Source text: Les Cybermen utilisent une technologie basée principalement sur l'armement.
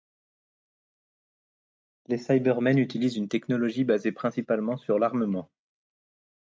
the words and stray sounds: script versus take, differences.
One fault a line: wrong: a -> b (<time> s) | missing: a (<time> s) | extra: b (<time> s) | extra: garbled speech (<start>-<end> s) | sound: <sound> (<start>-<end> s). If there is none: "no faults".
no faults